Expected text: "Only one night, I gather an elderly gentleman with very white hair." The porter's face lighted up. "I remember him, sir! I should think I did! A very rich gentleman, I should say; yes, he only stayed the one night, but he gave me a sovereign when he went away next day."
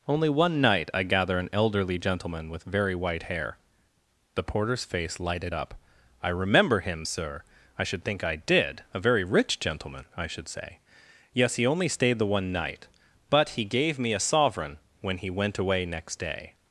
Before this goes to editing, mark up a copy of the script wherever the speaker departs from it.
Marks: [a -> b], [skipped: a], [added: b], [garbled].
"Only one night, I gather an elderly gentleman with very white hair." The porter's face lighted up. "I remember him, sir! I should think I did! A very rich gentleman, I should say; yes, he only stayed the one night, but he gave me a sovereign when he went away next day."